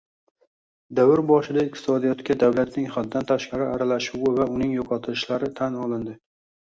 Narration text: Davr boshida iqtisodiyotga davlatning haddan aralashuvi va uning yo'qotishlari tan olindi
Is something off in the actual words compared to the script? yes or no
yes